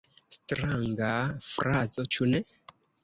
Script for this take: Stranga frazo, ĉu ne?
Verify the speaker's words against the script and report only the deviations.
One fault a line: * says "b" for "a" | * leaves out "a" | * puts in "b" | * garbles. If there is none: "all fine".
all fine